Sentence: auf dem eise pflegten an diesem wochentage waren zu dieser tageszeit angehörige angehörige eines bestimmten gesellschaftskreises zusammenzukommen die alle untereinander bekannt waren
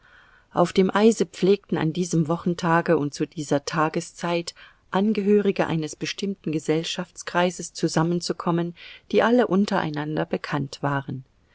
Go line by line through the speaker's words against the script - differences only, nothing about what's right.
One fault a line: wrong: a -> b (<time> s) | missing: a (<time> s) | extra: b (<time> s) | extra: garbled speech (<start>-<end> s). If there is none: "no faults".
wrong: waren -> und (3.0 s)
missing: angehörige (5.7 s)